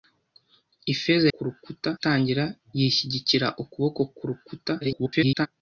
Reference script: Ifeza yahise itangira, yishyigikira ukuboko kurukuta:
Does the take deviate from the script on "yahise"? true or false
true